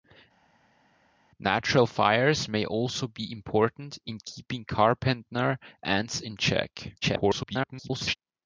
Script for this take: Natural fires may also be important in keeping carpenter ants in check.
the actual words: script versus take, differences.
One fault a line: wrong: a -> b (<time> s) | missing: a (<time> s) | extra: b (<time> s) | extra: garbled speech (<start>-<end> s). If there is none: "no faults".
extra: garbled speech (7.0-8.2 s)